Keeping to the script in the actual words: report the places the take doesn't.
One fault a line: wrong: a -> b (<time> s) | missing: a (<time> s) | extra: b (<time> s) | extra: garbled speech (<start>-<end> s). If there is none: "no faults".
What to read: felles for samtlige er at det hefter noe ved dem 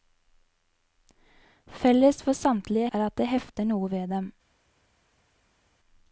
no faults